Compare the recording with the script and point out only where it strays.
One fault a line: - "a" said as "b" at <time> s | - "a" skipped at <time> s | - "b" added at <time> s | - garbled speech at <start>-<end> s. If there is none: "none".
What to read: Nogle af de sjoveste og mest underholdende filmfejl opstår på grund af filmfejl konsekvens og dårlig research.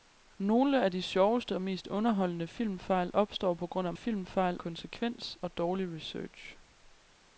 none